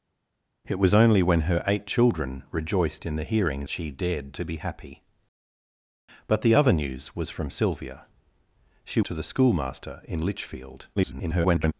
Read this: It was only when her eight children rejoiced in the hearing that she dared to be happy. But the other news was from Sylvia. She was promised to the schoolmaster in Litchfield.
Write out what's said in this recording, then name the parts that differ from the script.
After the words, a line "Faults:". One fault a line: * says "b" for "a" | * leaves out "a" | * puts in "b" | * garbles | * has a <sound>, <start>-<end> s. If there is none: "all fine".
It was only when her eight children rejoiced in the hearing she dared to be happy. But the other news was from Sylvia. She to the schoolmaster in Litchfield. [garbled]
Faults:
* leaves out "that"
* leaves out "was promised"
* garbles